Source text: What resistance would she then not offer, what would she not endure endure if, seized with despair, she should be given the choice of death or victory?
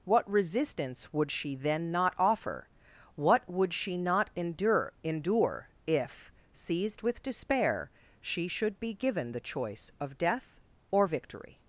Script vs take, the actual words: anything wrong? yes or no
no